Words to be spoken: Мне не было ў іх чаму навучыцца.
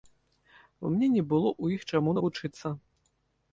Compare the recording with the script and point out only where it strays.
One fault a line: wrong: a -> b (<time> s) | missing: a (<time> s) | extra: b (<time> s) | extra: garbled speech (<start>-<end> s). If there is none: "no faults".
no faults